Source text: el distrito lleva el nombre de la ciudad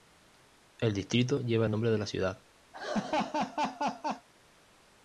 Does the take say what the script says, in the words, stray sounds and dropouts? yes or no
no